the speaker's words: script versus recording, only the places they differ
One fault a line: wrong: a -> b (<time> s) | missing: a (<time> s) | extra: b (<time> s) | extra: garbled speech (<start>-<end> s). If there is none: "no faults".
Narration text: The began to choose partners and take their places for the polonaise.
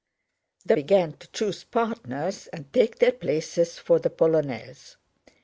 no faults